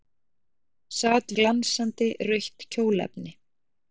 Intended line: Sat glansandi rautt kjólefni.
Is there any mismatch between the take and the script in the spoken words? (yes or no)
no